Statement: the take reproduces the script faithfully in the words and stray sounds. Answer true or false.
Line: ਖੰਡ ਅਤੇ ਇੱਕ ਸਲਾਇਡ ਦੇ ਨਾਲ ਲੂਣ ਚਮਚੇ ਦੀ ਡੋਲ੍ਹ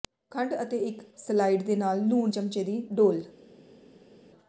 true